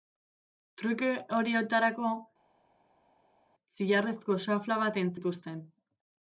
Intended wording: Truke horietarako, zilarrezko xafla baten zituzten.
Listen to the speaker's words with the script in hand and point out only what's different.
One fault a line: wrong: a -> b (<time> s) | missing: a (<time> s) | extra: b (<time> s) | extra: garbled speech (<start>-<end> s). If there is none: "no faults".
no faults